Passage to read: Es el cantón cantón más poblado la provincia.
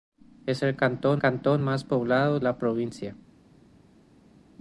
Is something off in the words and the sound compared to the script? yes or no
no